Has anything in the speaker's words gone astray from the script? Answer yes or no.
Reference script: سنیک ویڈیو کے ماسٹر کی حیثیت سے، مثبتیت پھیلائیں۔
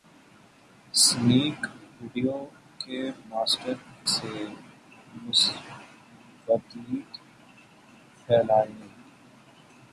yes